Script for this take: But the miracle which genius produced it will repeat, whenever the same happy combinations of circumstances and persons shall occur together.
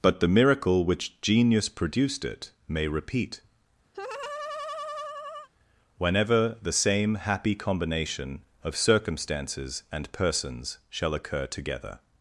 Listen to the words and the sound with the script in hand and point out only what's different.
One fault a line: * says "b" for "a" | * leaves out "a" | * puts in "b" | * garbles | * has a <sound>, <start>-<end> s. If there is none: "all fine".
* says "may" for "will"
* has a laugh, 3.9-5.5 s
* says "combination" for "combinations"